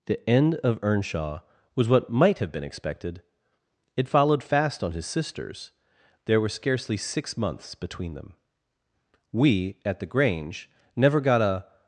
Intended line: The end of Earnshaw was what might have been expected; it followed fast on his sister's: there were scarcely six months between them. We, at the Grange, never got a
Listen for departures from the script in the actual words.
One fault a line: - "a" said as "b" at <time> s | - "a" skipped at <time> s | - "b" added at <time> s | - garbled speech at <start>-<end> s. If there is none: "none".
none